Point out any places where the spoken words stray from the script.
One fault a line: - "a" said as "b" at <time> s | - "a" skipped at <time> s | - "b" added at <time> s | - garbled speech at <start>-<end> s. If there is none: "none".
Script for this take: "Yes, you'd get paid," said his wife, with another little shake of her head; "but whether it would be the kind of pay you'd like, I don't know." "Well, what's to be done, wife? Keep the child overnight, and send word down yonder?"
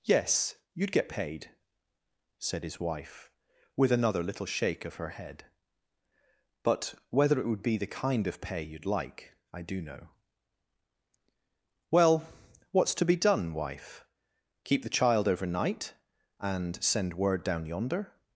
- "don't" said as "do" at 9.6 s